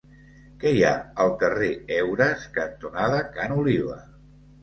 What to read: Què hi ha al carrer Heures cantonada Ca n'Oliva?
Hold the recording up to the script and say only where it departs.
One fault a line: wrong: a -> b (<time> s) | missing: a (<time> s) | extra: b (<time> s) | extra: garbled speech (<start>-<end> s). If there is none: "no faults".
no faults